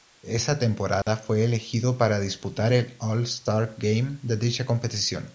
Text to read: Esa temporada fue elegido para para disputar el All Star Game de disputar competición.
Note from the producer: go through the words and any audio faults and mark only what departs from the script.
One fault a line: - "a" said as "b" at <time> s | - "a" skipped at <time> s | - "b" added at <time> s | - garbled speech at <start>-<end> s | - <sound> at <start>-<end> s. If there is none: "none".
- dropout at 1.0-1.1 s
- "para" skipped at 2.2 s
- "disputar" said as "dicha" at 4.3 s